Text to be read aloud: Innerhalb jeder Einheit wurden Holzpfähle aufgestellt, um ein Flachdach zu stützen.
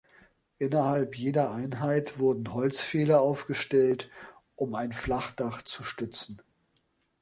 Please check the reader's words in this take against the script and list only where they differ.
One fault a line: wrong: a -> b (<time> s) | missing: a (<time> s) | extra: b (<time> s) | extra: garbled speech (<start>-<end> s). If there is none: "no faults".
no faults